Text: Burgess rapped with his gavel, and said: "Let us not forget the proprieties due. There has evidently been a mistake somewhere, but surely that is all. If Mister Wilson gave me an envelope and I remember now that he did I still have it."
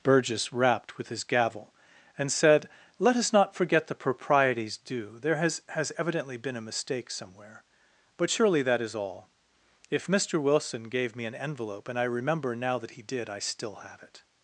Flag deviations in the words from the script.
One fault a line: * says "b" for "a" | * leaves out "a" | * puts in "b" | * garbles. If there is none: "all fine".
* puts in "has"